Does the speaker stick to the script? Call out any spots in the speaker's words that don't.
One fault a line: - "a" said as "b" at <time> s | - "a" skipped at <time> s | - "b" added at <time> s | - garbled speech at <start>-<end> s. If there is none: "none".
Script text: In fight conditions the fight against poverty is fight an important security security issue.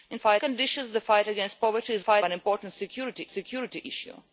none